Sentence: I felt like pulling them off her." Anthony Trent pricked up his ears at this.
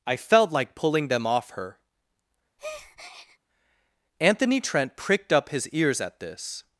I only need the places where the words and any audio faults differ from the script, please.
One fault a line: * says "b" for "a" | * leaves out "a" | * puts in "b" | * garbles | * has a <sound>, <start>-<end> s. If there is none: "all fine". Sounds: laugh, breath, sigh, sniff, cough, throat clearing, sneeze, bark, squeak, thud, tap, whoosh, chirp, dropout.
* has a breath, 2.6-3.4 s